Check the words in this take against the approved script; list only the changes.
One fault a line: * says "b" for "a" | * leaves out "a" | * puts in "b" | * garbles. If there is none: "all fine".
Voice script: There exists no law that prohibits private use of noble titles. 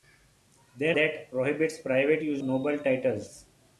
* leaves out "exists no law"
* leaves out "of"